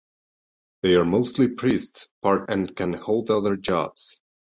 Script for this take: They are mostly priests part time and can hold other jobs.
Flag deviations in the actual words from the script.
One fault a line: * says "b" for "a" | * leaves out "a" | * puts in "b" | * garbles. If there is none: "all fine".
* leaves out "time"